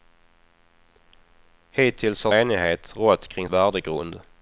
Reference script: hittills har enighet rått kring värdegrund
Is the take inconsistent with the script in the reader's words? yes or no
no